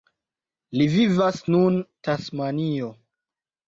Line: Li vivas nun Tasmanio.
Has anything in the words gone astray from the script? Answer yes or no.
no